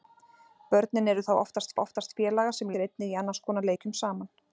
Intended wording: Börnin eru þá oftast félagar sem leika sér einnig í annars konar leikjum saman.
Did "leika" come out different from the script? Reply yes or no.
yes